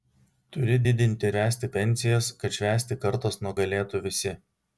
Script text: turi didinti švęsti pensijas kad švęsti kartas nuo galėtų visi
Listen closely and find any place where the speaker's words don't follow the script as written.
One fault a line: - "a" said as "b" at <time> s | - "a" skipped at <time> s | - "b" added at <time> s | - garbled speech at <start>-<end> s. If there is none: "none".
none